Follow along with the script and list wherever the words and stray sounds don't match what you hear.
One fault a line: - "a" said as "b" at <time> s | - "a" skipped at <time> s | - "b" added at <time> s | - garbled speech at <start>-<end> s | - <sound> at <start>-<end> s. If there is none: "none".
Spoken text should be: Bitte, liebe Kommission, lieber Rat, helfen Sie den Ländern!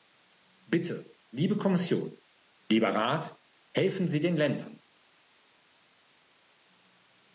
none